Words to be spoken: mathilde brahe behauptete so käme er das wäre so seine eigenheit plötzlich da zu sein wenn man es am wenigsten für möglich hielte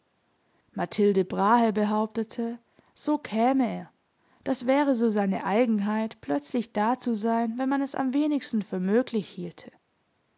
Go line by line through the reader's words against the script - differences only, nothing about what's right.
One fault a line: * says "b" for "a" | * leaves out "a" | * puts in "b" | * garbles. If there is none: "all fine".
all fine